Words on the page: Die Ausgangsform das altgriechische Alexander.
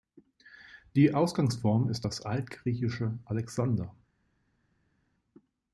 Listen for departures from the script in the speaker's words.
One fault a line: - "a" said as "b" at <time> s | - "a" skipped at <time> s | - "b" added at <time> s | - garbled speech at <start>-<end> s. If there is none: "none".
- "ist" added at 1.9 s